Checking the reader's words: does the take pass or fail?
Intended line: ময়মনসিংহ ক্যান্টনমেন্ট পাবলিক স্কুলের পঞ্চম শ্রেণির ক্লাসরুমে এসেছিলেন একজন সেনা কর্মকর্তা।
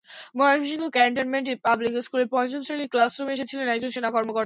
pass